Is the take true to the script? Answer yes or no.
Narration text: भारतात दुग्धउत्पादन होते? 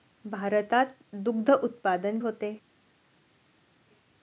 yes